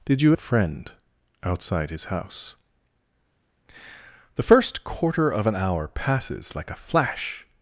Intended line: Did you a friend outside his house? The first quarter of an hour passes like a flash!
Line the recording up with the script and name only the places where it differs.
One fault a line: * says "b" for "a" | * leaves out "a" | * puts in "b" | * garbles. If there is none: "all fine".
all fine